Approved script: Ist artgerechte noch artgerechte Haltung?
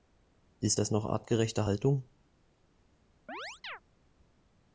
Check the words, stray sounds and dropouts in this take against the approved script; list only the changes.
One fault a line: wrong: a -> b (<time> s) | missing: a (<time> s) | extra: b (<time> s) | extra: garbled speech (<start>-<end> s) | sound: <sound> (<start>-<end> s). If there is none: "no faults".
wrong: artgerechte -> das (0.8 s)
sound: chirp (3.3-3.8 s)